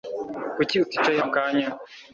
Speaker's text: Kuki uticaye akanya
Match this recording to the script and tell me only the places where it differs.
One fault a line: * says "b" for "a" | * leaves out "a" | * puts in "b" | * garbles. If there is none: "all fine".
all fine